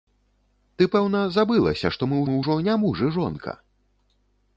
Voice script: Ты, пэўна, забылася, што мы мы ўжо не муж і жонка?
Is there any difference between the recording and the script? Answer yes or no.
no